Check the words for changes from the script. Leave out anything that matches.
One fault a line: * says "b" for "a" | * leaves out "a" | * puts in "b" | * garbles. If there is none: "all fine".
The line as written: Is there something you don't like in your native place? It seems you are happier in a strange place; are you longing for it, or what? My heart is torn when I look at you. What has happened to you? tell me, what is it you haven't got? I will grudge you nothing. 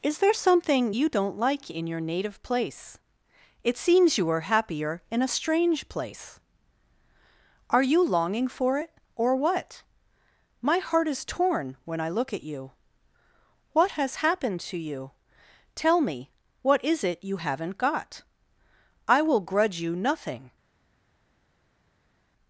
all fine